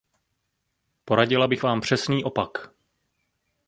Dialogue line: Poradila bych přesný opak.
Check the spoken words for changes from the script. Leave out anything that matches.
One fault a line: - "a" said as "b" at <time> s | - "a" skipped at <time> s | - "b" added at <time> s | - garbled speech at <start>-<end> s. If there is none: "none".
- "vám" added at 1.6 s